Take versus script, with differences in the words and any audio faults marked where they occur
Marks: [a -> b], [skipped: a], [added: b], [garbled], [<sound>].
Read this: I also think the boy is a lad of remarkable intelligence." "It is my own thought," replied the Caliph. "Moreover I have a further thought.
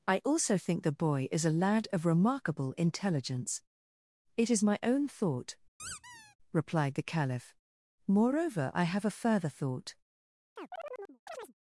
I also think the boy is a lad of remarkable intelligence." "It is my own thought," [squeak] replied the Caliph. "Moreover I have a further thought. [chirp]